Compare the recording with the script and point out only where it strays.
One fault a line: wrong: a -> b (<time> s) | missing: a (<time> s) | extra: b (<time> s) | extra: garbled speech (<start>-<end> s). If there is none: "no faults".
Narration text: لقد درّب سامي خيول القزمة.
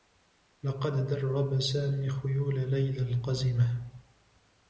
extra: ليلى (2.7 s)